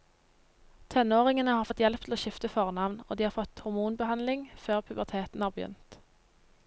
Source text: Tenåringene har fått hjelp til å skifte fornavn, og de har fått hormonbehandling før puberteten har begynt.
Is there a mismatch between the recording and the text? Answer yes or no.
no